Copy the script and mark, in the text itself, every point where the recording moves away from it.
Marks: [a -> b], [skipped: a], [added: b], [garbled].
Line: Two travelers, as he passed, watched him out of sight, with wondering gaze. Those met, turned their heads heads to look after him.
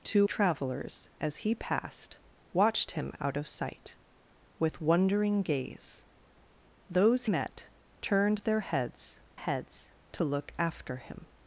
Two travelers, as he passed, watched him out of sight, with wondering gaze. Those met, turned their heads heads to look after him.